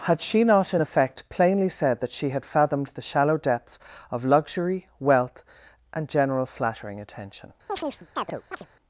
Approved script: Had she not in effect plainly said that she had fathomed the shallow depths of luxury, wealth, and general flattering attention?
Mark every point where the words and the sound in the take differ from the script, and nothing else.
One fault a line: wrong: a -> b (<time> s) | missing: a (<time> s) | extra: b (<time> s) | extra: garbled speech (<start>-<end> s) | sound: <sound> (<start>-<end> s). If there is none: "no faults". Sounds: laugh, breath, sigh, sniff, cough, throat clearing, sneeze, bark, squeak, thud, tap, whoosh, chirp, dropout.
sound: chirp (7.7-8.7 s)